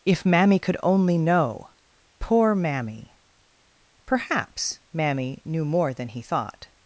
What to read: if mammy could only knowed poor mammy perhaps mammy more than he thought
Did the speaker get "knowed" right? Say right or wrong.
wrong